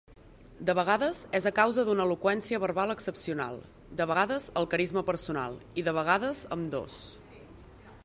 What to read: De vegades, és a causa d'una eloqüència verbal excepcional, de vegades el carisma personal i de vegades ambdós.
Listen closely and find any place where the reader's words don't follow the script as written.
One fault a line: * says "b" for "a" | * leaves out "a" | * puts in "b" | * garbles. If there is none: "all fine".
all fine